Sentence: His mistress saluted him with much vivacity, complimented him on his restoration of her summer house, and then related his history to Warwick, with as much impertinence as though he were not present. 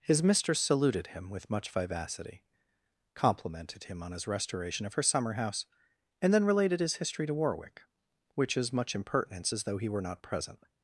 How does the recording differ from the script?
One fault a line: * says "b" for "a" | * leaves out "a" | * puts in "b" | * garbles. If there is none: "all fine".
* says "which" for "with"